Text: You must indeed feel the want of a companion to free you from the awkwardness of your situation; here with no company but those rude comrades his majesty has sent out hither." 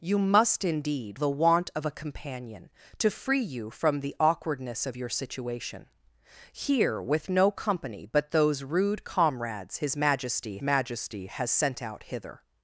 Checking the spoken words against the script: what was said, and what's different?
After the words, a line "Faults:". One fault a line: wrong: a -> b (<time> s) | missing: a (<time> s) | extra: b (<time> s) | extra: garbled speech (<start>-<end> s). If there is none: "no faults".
You must indeed the want of a companion to free you from the awkwardness of your situation; here with no company but those rude comrades his majesty majesty has sent out hither."
Faults:
missing: feel (1.2 s)
extra: majesty (10.6 s)